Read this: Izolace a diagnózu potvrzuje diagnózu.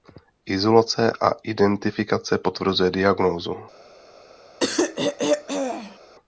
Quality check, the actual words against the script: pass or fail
fail